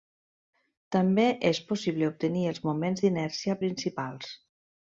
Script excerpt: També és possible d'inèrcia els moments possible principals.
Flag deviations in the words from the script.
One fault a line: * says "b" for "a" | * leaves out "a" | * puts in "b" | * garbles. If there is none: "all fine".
* says "obtenir" for "d'inèrcia"
* says "d'inèrcia" for "possible"